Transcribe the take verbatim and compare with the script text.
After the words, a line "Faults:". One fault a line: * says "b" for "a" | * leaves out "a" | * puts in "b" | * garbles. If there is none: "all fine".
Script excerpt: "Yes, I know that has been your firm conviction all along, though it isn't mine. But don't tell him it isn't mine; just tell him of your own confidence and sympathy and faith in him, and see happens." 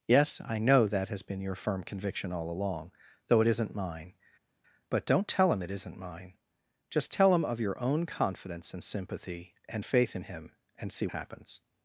"Yes, I know that has been your firm conviction all along, though it isn't mine. But don't tell him it isn't mine; just tell him of your own confidence and sympathy and faith in him, and see happens."
Faults:
all fine